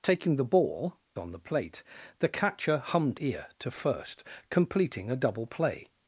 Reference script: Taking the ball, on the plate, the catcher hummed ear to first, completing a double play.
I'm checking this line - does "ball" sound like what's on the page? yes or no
yes